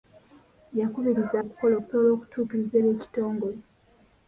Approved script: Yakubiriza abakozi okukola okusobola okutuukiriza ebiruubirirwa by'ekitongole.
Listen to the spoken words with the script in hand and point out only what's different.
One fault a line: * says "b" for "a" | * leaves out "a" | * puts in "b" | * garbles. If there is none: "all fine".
* leaves out "abakozi"
* leaves out "ebiruubirirwa"